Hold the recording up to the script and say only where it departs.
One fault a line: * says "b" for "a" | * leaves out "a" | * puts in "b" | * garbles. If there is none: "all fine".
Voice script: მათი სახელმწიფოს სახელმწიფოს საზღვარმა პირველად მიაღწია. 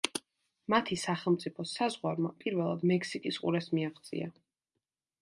* leaves out "სახელმწიფოს"
* puts in "მექსიკის ყურეს"